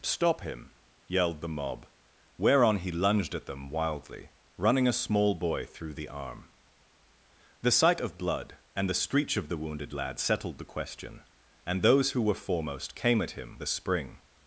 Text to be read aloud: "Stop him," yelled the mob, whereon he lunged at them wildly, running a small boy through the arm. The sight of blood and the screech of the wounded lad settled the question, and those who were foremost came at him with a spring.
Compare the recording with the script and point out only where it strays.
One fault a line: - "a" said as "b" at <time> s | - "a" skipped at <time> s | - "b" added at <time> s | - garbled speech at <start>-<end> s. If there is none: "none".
- "with" skipped at 13.6 s